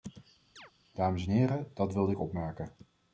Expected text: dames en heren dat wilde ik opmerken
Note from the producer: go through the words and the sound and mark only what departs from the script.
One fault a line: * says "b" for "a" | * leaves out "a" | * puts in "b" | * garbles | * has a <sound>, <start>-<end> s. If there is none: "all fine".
* has a chirp, 0.6-0.7 s